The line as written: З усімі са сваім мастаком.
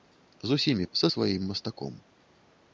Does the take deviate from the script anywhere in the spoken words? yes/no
no